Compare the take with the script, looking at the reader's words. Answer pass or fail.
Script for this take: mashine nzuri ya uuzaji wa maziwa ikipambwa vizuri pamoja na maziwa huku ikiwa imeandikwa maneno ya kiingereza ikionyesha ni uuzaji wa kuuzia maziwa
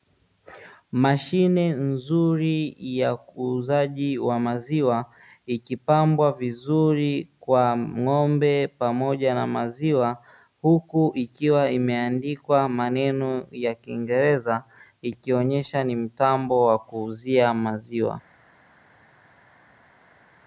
fail